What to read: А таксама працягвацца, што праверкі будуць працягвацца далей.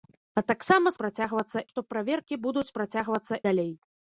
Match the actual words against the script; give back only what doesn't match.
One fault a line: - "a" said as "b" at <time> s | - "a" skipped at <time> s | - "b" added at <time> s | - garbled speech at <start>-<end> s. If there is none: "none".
none